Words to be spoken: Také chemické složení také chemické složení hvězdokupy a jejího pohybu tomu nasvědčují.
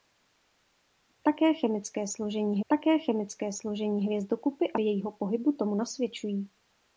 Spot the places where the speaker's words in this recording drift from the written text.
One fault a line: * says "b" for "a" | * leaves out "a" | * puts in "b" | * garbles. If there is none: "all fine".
all fine